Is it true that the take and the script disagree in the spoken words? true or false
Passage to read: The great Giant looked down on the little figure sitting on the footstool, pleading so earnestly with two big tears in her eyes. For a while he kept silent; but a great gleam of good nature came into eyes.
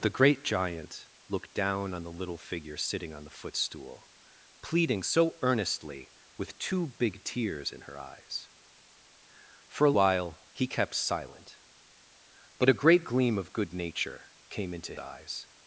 false